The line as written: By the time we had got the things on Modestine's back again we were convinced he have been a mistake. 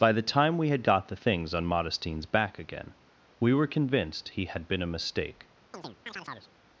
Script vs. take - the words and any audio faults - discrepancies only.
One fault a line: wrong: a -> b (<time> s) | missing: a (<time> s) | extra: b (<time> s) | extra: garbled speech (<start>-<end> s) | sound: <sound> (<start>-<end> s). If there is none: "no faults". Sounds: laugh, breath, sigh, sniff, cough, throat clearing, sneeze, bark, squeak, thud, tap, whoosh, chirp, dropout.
wrong: have -> had (4.4 s)
sound: chirp (5.7-6.5 s)